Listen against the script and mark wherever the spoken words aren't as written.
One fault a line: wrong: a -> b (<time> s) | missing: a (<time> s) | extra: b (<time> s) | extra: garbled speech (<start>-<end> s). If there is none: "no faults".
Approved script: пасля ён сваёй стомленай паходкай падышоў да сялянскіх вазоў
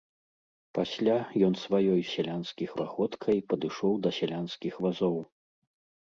wrong: стомленай -> сялянскіх (2.1 s)